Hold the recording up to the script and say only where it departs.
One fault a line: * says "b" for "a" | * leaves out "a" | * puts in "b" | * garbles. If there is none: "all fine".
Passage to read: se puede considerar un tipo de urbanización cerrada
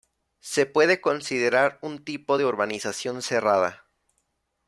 all fine